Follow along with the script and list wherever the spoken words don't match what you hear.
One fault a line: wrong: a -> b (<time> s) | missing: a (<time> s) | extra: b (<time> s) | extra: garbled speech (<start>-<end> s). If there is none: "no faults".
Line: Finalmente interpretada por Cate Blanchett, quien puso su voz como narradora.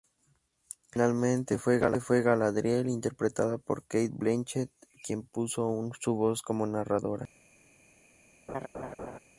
extra: fue Galadriel (1.6 s)